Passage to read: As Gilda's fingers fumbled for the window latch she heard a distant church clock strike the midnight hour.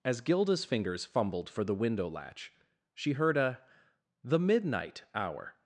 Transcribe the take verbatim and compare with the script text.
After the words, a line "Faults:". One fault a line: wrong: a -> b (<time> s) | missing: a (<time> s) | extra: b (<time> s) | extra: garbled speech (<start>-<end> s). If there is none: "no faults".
As Gilda's fingers fumbled for the window latch she heard a the midnight hour.
Faults:
missing: distant church clock strike (3.6 s)